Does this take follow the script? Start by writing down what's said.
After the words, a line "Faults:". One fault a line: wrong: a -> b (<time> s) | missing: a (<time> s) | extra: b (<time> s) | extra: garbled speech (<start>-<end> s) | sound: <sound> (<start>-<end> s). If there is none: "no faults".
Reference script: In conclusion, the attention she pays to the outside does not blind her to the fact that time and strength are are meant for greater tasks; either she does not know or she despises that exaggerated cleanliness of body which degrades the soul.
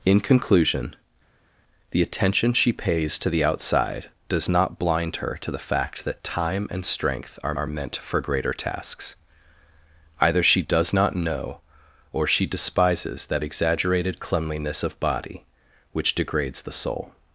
In conclusion, the attention she pays to the outside does not blind her to the fact that time and strength are are meant for greater tasks; either she does not know or she despises that exaggerated cleanliness of body which degrades the soul.
Faults:
no faults